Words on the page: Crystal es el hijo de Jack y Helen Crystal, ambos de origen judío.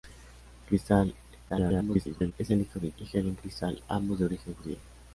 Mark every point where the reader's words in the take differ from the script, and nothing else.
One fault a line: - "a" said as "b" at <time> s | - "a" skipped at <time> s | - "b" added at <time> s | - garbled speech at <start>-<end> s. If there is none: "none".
- garbled speech at 1.5-2.3 s
- "Jack" skipped at 2.9 s